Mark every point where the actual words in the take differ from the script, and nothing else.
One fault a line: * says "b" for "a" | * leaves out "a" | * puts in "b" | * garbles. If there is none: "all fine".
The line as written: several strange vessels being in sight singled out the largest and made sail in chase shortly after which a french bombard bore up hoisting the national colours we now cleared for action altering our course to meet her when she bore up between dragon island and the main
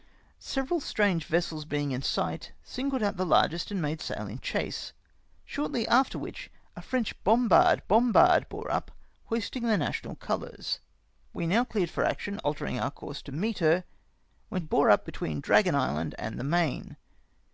* puts in "bombard"
* leaves out "she"